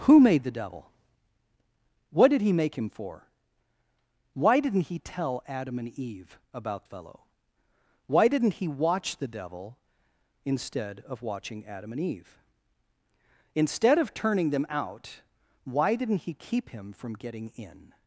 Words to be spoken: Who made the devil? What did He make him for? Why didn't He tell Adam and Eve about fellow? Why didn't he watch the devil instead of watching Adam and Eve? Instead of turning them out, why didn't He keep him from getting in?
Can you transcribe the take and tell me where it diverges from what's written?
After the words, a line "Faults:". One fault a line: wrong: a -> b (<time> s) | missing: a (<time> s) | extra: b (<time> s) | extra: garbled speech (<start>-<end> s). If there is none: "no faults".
Who made the devil? What did He make him for? Why didn't He tell Adam and Eve about fellow? Why didn't he watch the devil instead of watching Adam and Eve? Instead of turning them out, why didn't He keep him from getting in?
Faults:
no faults